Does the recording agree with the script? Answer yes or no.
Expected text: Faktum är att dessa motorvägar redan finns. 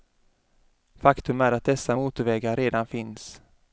yes